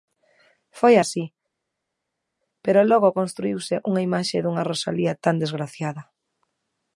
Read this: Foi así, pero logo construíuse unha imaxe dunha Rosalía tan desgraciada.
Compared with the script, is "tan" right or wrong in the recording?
right